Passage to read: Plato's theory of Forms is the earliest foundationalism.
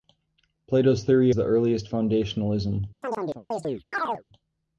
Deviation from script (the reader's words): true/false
true